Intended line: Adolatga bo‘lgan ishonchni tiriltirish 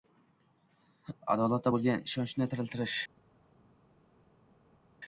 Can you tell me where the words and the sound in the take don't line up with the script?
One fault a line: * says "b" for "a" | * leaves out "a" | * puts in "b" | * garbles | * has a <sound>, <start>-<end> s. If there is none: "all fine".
all fine